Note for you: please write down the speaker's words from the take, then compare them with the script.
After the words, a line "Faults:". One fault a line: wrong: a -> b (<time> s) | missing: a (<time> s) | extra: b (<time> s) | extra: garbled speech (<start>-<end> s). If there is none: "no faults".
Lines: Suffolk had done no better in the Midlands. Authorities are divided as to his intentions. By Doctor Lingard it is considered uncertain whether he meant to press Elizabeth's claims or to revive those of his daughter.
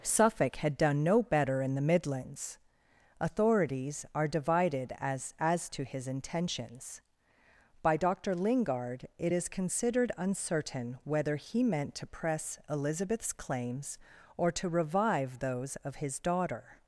Suffolk had done no better in the Midlands. Authorities are divided as as to his intentions. By Doctor Lingard it is considered uncertain whether he meant to press Elizabeth's claims or to revive those of his daughter.
Faults:
extra: as (5.4 s)